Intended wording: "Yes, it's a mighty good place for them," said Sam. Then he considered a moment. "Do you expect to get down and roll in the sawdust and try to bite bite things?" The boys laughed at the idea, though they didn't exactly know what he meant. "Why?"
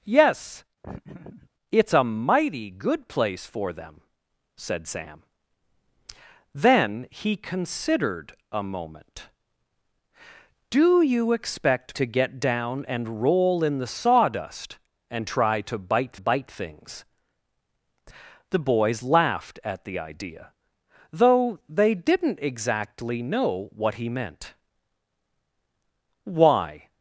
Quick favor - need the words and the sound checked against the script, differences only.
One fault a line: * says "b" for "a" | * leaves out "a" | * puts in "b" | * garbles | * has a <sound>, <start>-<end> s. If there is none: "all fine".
* has a laugh, 0.8-1.5 s